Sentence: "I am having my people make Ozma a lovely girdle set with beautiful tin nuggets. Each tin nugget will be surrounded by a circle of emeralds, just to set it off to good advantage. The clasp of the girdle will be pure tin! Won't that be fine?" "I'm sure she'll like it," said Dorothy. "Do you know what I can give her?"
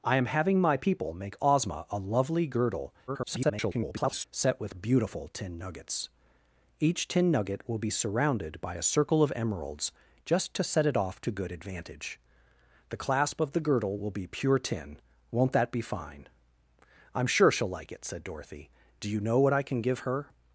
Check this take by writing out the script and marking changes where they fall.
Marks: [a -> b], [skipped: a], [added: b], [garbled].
"I am having my people make Ozma a lovely girdle [garbled] set with beautiful tin nuggets. Each tin nugget will be surrounded by a circle of emeralds, just to set it off to good advantage. The clasp of the girdle will be pure tin! Won't that be fine?" "I'm sure she'll like it," said Dorothy. "Do you know what I can give her?"